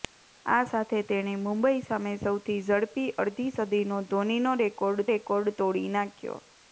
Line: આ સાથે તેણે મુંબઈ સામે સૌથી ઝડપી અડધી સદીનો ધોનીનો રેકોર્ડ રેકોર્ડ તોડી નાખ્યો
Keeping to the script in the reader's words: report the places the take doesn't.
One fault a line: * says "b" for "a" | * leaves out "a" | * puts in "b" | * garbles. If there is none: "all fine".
all fine